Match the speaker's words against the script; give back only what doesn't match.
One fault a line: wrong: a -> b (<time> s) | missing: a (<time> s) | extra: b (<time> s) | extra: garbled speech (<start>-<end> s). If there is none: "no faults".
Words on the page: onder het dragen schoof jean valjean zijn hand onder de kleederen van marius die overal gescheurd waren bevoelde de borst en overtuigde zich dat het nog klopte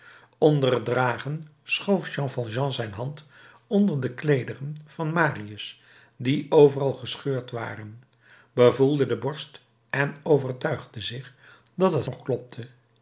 no faults